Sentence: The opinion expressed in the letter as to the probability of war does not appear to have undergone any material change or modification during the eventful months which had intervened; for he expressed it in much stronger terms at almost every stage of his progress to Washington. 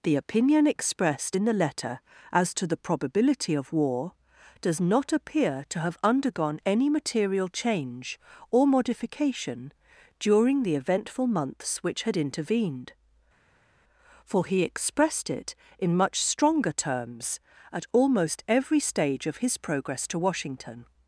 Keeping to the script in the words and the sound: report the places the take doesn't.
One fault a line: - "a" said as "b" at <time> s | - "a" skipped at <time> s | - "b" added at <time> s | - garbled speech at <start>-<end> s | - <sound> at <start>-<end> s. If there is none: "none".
none